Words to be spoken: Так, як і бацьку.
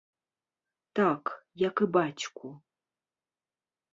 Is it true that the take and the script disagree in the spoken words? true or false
false